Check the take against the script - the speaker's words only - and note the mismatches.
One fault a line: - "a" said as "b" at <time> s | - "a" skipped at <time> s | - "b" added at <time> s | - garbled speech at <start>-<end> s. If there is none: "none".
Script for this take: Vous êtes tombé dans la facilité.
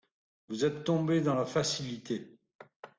none